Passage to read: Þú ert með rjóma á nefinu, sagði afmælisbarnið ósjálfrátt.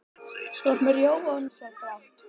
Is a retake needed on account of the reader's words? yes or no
yes